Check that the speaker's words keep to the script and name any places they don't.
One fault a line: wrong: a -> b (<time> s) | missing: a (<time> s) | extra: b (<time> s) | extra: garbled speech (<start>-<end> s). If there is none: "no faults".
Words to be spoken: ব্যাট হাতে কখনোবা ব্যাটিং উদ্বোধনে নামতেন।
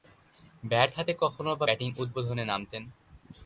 no faults